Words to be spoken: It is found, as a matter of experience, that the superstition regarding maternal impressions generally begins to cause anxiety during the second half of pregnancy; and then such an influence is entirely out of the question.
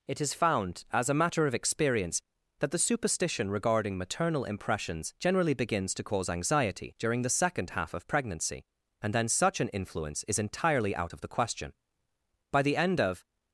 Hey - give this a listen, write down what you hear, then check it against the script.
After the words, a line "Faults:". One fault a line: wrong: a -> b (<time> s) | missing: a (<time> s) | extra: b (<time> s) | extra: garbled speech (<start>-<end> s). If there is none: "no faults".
It is found, as a matter of experience, that the superstition regarding maternal impressions generally begins to cause anxiety during the second half of pregnancy; and then such an influence is entirely out of the question. By the end of
Faults:
extra: By the end of (12.5 s)